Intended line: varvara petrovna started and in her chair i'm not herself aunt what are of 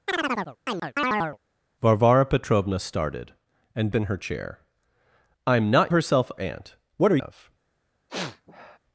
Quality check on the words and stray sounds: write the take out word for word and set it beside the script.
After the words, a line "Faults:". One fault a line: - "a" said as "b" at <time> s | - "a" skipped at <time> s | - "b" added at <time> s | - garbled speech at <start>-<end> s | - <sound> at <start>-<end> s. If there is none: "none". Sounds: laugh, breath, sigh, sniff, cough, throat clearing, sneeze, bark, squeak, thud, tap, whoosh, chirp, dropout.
varvara petrovna started and in her chair i'm not herself aunt what are of
Faults:
- chirp at 0.1-1.4 s
- sniff at 8.1-8.8 s